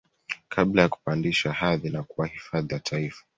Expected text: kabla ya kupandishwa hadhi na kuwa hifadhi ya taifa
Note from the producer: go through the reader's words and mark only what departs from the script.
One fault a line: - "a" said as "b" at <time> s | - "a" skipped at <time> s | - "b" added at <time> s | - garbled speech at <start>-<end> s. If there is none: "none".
none